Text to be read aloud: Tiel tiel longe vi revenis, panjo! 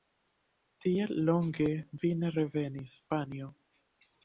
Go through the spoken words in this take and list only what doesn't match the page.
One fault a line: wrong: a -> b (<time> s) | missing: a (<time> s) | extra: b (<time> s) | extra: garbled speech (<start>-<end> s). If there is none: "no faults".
missing: tiel (1.1 s)
extra: ne (2.2 s)